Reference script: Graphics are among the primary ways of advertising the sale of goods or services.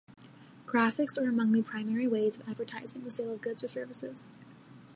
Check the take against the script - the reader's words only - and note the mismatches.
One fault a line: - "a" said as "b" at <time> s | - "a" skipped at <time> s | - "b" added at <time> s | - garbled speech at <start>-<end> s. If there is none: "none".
none